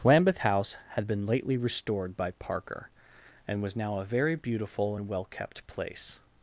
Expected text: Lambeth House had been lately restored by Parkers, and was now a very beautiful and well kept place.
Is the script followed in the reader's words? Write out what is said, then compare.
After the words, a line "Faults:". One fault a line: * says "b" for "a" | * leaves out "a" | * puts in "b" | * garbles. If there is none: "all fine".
Lambeth House had been lately restored by Parker, and was now a very beautiful and well kept place.
Faults:
* says "Parker" for "Parkers"